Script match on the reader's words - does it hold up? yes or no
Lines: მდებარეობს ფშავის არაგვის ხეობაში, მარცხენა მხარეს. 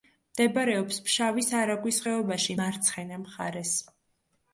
yes